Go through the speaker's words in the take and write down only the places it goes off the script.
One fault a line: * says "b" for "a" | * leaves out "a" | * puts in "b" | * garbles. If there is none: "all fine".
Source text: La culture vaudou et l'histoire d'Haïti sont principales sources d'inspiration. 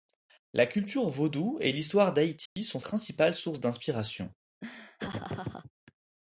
all fine